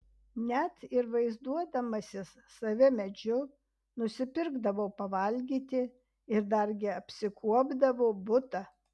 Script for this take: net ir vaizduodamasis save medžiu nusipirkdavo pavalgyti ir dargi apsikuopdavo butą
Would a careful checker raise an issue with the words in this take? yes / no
no